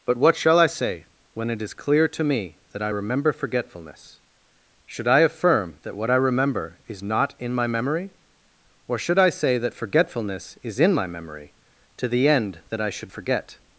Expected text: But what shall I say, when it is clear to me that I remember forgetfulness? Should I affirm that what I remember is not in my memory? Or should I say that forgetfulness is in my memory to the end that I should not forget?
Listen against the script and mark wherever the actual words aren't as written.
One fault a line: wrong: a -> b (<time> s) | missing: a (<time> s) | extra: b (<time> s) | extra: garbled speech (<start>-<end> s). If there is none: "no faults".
missing: not (13.1 s)